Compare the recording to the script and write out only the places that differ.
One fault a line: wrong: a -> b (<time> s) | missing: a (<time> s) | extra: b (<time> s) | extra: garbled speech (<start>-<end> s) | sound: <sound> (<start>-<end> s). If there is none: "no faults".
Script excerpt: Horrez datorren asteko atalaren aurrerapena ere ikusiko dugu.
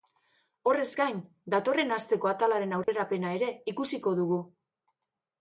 extra: gain (1.0 s)
sound: dropout (2.8-2.9 s)